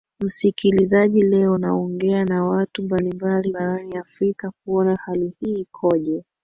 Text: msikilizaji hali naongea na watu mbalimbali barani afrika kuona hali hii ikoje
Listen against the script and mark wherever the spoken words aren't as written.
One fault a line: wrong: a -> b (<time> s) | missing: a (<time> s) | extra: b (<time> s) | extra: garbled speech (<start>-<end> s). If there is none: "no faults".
wrong: hali -> leo (1.2 s)